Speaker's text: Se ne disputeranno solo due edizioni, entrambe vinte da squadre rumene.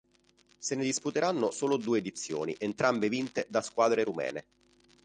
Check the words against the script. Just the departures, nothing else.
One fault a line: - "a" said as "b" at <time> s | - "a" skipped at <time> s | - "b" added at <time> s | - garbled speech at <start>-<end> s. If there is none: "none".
none